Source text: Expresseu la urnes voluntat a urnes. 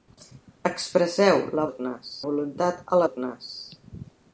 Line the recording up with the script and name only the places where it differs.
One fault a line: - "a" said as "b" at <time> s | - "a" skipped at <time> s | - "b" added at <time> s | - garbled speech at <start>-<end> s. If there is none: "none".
none